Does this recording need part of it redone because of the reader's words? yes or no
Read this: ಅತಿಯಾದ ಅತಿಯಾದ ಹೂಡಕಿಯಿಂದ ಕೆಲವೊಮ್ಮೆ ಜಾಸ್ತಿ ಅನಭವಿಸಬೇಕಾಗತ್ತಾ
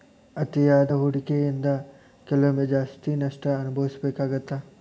yes